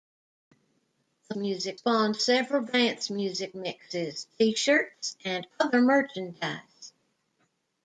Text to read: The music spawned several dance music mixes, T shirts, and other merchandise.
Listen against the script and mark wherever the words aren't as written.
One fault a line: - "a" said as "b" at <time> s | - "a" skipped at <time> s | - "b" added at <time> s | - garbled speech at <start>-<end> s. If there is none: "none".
none